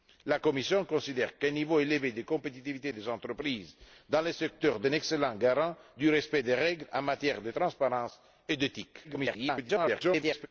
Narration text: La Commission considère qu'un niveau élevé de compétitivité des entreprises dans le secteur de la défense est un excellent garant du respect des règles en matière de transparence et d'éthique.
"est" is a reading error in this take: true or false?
true